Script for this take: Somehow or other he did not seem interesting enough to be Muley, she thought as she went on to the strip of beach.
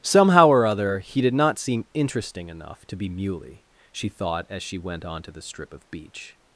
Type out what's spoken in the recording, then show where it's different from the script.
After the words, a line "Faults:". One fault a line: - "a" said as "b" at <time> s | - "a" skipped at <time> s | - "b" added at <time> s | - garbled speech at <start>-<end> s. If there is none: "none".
Somehow or other he did not seem interesting enough to be Muley, she thought as she went on to the strip of beach.
Faults:
none